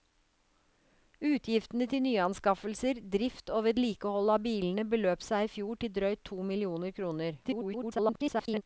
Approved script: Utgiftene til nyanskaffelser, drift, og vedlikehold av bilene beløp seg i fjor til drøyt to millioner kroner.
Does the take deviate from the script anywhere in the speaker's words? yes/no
yes